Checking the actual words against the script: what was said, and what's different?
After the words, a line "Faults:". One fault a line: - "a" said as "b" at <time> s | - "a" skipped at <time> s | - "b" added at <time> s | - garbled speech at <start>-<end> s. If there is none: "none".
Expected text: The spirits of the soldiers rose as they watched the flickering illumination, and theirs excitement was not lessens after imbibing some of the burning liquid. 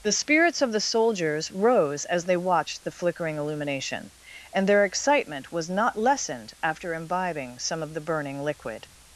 The spirits of the soldiers rose as they watched the flickering illumination, and their excitement was not lessened after imbibing some of the burning liquid.
Faults:
- "theirs" said as "their" at 4.7 s
- "lessens" said as "lessened" at 6.0 s